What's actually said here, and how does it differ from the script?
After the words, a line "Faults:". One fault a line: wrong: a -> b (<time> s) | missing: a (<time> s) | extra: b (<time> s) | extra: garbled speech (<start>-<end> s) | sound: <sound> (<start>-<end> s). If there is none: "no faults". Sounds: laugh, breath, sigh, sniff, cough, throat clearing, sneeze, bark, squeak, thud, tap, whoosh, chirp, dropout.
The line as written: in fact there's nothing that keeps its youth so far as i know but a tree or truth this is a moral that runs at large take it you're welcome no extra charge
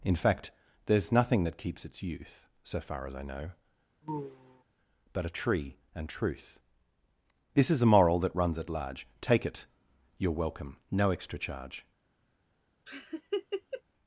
in fact there's nothing that keeps its youth so far as i know but a tree and truth this is a moral that runs at large take it you're welcome no extra charge
Faults:
sound: sigh (4.0-4.6 s)
wrong: or -> and (5.9 s)
sound: laugh (12.9-13.8 s)